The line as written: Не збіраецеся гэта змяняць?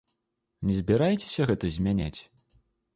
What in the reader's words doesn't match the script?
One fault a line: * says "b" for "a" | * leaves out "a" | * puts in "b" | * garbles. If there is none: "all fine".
all fine